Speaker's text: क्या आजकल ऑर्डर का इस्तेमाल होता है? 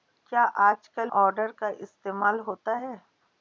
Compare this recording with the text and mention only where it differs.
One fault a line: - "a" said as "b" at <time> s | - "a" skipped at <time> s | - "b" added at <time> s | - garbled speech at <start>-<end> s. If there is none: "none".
none